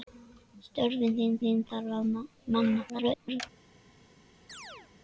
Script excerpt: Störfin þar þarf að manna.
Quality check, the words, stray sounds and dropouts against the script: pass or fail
fail